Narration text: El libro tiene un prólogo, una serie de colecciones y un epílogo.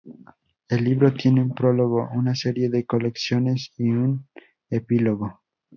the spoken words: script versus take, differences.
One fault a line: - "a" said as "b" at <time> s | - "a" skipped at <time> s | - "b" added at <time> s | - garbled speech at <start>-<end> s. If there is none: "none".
none